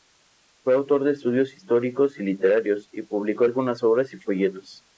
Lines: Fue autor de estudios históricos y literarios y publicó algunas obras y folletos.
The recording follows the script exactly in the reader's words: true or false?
true